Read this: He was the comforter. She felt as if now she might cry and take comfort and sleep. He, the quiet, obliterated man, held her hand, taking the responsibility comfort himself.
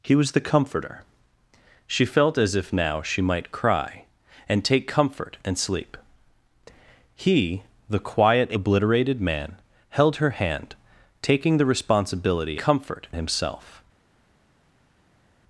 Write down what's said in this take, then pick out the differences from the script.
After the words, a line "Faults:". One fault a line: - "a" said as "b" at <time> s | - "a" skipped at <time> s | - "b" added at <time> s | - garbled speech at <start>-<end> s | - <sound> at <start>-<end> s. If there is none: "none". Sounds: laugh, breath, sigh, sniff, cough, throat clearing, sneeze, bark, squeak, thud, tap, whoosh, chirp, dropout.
He was the comforter. She felt as if now she might cry and take comfort and sleep. He, the quiet, obliterated man, held her hand, taking the responsibility comfort himself.
Faults:
none